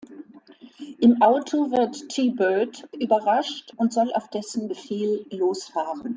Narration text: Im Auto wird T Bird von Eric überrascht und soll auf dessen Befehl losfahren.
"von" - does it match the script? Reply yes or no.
no